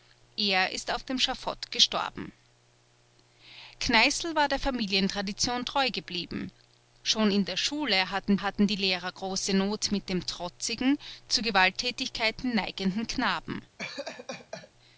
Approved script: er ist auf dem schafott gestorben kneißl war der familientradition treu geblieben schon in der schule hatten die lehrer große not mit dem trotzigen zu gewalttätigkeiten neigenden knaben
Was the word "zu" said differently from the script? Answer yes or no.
no